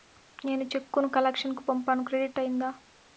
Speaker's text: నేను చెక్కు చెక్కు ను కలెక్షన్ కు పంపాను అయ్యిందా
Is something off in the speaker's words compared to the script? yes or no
yes